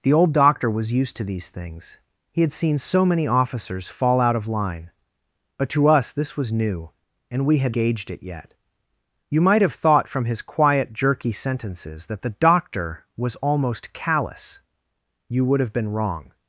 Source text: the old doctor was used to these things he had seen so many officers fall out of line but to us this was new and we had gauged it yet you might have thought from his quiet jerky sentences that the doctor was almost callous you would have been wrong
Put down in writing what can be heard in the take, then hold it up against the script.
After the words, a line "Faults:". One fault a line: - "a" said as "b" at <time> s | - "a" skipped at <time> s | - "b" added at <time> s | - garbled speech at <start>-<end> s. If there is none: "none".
the old doctor was used to these things he had seen so many officers fall out of line but to us this was new and we had gauged it yet you might have thought from his quiet jerky sentences that the doctor was almost callous you would have been wrong
Faults:
none